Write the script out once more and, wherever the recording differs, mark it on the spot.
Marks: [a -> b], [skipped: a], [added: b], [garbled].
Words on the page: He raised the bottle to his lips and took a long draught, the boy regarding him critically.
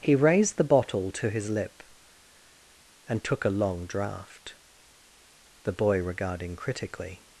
He raised the bottle to his [lips -> lip] and took a long draught, the boy regarding [skipped: him] critically.